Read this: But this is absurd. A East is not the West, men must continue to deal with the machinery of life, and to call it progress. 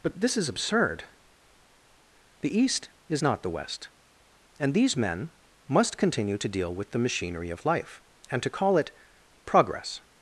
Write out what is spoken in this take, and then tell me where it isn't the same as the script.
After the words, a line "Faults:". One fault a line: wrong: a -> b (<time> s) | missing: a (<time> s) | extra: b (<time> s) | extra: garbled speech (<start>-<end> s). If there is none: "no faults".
But this is absurd. The East is not the West, and these men must continue to deal with the machinery of life, and to call it progress.
Faults:
wrong: A -> The (2.4 s)
extra: and these (4.6 s)